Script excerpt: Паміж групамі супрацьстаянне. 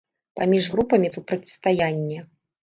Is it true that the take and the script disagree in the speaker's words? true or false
false